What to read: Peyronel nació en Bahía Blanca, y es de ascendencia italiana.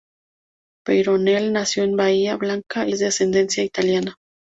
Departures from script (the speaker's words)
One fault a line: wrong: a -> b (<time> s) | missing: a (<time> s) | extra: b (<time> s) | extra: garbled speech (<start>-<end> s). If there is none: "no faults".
no faults